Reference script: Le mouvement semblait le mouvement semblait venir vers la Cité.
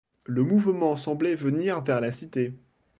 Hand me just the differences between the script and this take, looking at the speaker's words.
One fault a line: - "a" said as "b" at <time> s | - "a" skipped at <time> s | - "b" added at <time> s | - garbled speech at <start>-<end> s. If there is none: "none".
- "le mouvement semblait" skipped at 1.4 s